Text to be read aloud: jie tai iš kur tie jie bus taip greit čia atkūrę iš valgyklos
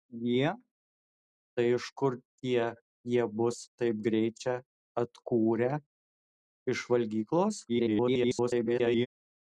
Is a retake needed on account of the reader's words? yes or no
yes